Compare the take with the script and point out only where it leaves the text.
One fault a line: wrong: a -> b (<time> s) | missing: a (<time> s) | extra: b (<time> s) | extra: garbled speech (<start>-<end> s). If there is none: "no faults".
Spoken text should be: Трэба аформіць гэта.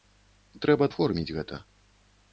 no faults